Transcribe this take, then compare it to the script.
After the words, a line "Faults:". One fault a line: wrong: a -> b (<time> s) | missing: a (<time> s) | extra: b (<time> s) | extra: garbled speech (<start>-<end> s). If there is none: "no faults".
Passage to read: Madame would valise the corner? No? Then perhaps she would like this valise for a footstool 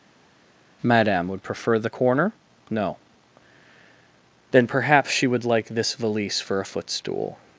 Madame would prefer the corner? No? Then perhaps she would like this valise for a footstool
Faults:
wrong: valise -> prefer (1.4 s)